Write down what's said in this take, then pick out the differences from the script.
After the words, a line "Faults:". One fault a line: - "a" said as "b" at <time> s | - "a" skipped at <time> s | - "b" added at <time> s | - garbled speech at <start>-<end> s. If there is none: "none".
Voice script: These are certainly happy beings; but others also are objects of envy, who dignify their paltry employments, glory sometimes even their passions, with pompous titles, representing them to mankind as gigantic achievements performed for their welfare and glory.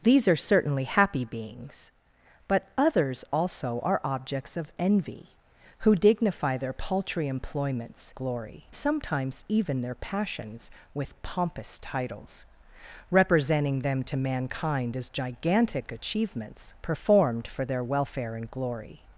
These are certainly happy beings; but others also are objects of envy, who dignify their paltry employments, glory sometimes even their passions, with pompous titles, representing them to mankind as gigantic achievements performed for their welfare and glory.
Faults:
none